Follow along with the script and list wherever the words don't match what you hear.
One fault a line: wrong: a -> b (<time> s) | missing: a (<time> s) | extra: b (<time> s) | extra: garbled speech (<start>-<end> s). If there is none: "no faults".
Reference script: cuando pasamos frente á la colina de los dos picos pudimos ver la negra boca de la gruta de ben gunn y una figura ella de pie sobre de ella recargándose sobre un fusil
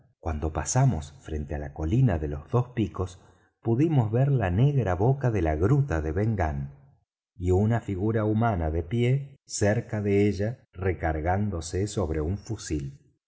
wrong: ella -> humana (8.2 s)
wrong: sobre -> cerca (9.4 s)